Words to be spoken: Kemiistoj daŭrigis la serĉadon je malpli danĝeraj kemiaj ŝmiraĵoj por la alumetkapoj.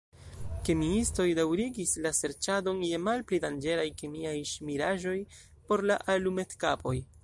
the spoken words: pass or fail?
pass